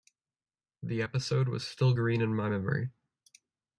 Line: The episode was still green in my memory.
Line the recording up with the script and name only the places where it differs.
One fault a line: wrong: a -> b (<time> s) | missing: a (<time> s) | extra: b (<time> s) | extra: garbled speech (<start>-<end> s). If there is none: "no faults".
no faults